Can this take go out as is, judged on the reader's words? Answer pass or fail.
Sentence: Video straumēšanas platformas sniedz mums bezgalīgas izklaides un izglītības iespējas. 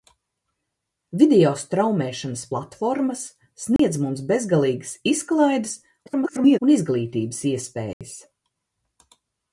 fail